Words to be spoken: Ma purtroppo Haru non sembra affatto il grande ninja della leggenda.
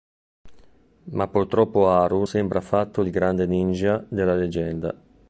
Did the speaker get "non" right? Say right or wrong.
wrong